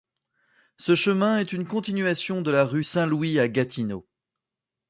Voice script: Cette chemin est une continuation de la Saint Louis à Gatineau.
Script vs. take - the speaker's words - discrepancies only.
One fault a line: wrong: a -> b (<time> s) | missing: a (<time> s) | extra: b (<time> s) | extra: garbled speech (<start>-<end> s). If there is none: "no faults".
wrong: Cette -> Ce (0.8 s)
extra: rue (2.6 s)